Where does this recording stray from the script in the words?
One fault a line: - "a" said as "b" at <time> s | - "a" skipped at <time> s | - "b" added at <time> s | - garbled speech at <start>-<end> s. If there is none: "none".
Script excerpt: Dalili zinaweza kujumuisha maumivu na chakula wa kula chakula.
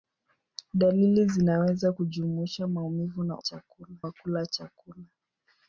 none